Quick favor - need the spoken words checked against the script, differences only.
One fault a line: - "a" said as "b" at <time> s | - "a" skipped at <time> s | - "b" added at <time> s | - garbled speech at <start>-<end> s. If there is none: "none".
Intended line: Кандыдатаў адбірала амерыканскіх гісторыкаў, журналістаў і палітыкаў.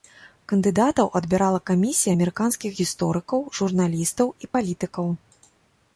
- "камісія" added at 1.7 s